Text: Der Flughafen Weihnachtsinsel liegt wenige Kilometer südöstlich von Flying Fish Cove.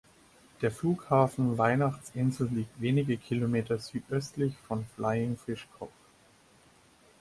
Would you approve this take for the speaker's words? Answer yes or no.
yes